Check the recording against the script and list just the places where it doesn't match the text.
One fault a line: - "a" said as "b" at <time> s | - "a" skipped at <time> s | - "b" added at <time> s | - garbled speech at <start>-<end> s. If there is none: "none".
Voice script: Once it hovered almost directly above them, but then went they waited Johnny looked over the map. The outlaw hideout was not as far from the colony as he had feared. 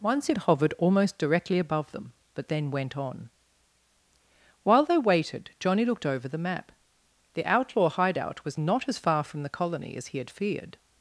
- "on While" added at 3.0 s